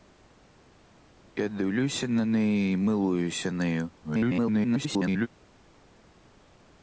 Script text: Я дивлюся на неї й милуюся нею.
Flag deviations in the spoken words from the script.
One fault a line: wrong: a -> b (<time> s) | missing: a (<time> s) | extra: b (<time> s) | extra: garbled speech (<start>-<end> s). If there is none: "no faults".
extra: garbled speech (4.0-5.3 s)